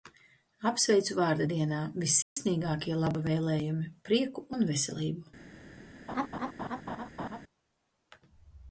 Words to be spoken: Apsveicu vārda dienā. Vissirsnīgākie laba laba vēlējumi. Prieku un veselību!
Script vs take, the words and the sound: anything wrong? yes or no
yes